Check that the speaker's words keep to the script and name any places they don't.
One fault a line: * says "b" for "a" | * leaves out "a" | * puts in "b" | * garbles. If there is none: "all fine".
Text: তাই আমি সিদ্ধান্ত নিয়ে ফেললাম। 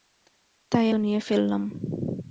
* leaves out "আমি সিদ্ধান্ত"